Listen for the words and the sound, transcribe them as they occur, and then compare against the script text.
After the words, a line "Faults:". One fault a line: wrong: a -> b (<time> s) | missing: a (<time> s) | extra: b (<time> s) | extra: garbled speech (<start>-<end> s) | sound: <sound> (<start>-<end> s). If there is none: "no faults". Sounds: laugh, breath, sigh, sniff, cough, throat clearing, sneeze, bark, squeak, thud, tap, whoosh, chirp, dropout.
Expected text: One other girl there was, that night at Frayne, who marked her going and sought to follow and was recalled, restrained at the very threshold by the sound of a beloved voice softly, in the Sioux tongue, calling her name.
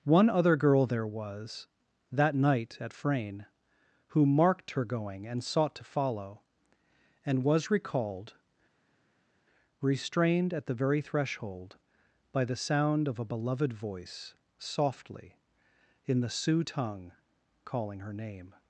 One other girl there was, that night at Frayne, who marked her going and sought to follow and was recalled, restrained at the very threshold by the sound of a beloved voice softly, in the Sioux tongue, calling her name.
Faults:
no faults